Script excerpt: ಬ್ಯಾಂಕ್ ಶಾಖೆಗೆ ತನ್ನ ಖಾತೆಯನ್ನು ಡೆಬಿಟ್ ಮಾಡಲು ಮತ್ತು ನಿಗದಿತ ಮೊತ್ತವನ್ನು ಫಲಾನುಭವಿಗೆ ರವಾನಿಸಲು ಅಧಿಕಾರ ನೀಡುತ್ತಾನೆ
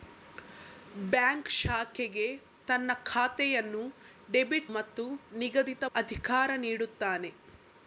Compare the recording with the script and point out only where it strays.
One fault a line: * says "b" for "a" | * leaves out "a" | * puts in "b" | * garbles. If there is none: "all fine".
* leaves out "ಮಾಡಲು"
* leaves out "ಮೊತ್ತವನ್ನು ಫಲಾನುಭವಿಗೆ ರವಾನಿಸಲು"